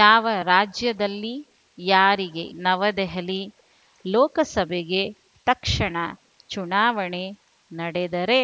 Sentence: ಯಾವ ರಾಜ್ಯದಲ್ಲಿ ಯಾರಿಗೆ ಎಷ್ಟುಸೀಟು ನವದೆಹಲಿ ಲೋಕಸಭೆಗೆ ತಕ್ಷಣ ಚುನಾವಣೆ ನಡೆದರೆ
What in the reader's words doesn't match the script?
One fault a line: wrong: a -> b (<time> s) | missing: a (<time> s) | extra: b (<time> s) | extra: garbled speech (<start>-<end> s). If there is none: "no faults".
missing: ಎಷ್ಟುಸೀಟು (2.4 s)